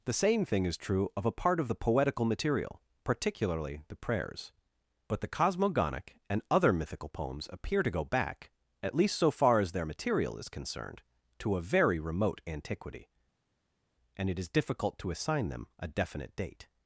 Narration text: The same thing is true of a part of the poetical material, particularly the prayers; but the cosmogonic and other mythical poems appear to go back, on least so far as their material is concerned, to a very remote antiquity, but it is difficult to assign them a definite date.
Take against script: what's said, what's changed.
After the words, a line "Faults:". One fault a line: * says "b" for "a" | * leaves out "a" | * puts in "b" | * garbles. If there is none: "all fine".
The same thing is true of a part of the poetical material, particularly the prayers; but the cosmogonic and other mythical poems appear to go back, at least so far as their material is concerned, to a very remote antiquity, and it is difficult to assign them a definite date.
Faults:
* says "at" for "on"
* says "and" for "but"